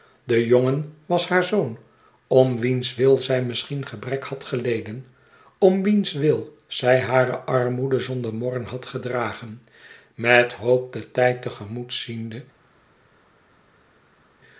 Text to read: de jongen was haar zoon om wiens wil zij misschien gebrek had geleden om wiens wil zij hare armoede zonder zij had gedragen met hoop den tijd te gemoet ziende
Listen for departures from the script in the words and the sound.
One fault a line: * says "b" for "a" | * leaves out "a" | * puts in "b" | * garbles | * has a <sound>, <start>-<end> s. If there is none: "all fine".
* says "morren" for "zij"